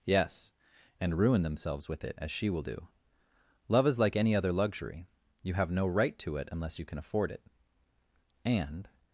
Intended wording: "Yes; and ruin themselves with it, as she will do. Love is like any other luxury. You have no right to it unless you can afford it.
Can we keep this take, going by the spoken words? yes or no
no